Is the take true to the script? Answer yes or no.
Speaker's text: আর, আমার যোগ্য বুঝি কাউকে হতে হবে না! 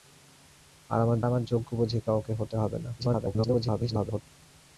no